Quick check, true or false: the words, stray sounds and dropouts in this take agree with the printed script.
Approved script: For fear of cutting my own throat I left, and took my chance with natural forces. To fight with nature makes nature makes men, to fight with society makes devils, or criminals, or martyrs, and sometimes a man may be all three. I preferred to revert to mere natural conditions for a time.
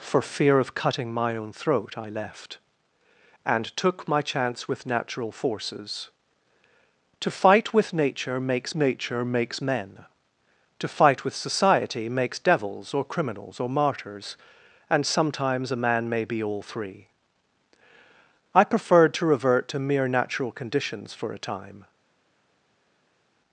true